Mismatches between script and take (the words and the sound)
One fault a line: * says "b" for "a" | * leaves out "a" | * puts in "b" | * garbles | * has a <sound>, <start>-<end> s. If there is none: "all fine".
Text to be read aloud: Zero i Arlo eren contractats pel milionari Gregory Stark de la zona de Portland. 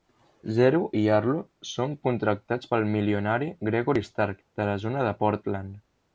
* says "són" for "eren"